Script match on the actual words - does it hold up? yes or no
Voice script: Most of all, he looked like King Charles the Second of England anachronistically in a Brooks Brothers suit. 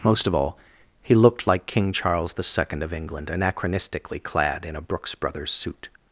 no